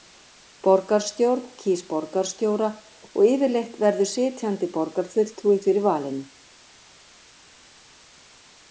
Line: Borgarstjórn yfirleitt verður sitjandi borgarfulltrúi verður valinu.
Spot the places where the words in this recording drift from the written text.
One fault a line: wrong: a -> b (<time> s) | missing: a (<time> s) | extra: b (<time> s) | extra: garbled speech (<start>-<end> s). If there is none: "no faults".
extra: kýs borgarstjóra og (1.6 s)
wrong: verður -> fyrir (5.7 s)